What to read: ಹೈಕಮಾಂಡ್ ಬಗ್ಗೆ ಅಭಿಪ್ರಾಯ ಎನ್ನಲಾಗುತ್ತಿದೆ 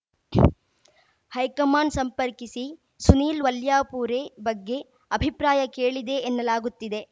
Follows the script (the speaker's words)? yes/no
no